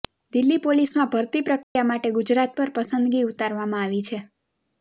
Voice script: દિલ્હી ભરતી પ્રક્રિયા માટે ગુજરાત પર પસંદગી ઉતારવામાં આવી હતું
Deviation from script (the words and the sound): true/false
true